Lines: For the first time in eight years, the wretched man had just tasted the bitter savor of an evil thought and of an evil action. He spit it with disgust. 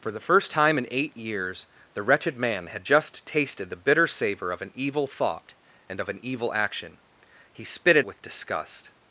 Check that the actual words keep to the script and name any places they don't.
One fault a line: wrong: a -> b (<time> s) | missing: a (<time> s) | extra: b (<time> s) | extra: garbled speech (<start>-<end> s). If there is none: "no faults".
no faults